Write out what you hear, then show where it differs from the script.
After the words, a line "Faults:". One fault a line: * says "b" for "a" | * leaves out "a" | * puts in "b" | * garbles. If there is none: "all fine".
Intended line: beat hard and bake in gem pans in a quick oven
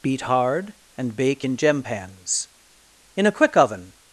beat hard and bake in gem pans in a quick oven
Faults:
all fine